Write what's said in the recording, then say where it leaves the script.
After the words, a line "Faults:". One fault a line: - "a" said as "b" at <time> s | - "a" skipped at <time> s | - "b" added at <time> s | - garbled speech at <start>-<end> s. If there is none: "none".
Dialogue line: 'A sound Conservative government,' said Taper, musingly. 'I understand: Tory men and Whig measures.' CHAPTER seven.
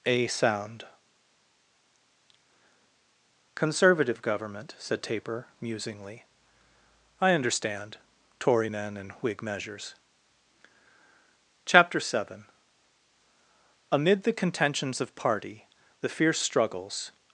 'A sound Conservative government,' said Taper, musingly. 'I understand: Tory men and Whig measures.' CHAPTER seven. Amid the contentions of party, the fierce struggles
Faults:
- "Amid the contentions of party the fierce struggles" added at 13.9 s